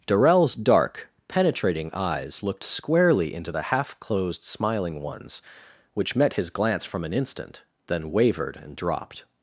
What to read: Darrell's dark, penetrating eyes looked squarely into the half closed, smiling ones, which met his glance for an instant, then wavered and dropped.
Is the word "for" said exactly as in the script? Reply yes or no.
no